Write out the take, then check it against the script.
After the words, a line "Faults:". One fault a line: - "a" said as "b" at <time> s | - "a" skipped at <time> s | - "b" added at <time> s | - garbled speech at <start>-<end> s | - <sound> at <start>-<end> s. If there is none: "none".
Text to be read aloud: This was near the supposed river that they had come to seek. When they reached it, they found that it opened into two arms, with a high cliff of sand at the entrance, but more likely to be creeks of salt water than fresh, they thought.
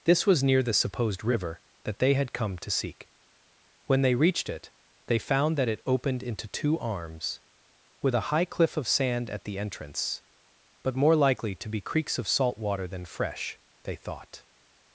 This was near the supposed river that they had come to seek. When they reached it, they found that it opened into two arms, with a high cliff of sand at the entrance, but more likely to be creeks of salt water than fresh, they thought.
Faults:
none